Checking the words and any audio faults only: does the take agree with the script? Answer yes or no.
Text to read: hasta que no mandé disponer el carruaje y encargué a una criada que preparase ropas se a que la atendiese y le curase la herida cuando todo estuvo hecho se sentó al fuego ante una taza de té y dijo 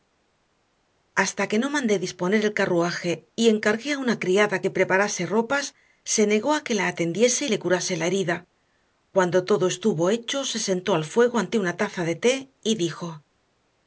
no